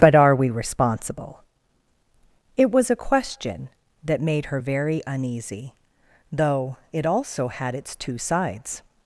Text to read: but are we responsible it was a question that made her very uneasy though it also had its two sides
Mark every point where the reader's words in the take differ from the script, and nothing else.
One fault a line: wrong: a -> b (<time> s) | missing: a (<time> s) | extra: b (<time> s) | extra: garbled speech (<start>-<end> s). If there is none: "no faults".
no faults